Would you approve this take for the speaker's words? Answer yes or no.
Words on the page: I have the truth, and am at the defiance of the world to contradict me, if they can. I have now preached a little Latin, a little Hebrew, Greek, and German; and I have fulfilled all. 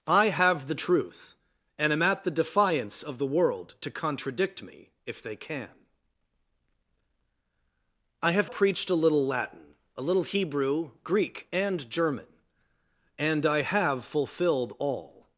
no